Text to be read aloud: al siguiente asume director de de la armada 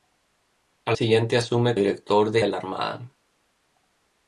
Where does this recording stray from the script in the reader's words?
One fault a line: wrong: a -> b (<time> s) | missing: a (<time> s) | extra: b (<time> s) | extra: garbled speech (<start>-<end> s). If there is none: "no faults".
no faults